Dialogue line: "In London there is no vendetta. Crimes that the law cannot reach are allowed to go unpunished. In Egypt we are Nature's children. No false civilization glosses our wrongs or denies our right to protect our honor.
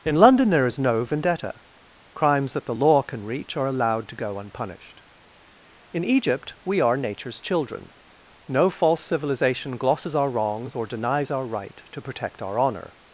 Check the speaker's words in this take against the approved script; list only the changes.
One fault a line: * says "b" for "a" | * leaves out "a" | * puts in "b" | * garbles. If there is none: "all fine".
* says "can" for "cannot"